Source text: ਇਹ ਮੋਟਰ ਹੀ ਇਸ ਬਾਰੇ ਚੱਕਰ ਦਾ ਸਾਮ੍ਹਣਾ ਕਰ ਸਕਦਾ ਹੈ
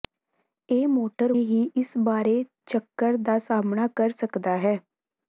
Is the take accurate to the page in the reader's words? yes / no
yes